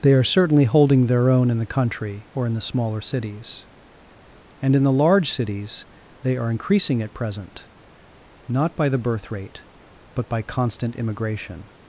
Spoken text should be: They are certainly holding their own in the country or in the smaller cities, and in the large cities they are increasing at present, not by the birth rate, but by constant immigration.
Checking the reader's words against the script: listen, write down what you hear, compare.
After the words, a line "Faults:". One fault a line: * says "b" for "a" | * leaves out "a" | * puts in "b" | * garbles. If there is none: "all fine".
They are certainly holding their own in the country or in the smaller cities, and in the large cities they are increasing at present, not by the birth rate, but by constant immigration.
Faults:
all fine